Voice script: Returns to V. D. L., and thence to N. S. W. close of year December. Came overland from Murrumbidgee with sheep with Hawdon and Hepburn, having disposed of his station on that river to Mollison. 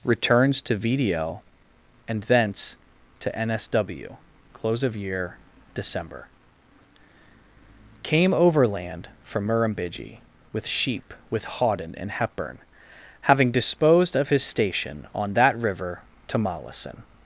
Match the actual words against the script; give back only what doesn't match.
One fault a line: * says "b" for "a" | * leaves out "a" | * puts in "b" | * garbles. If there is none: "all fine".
all fine